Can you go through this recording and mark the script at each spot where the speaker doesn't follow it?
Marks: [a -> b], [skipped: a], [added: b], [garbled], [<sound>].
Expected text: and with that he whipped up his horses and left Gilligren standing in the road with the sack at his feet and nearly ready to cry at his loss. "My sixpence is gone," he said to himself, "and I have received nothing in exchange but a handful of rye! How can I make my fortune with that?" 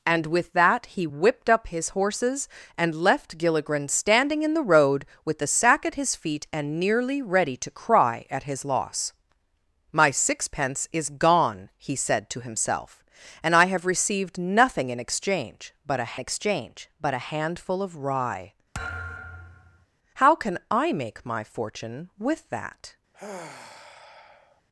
and with that he whipped up his horses and left Gilligren standing in the road with the sack at his feet and nearly ready to cry at his loss. "My sixpence is gone," he said to himself, "and I have received nothing in exchange but a [added: exchange but a] handful of rye! [thud] How can I make my fortune with that?" [sigh]